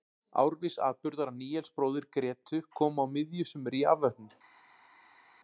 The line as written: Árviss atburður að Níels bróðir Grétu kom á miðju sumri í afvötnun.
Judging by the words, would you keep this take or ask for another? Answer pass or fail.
pass